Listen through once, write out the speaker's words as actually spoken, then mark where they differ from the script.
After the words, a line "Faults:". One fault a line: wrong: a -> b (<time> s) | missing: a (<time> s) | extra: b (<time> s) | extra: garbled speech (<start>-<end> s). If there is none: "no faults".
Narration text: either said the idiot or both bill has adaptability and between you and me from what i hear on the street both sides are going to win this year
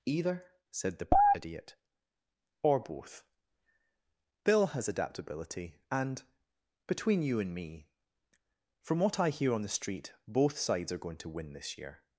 either said the idiot or both bill has adaptability and between you and me from what i hear on the street both sides are going to win this year
Faults:
no faults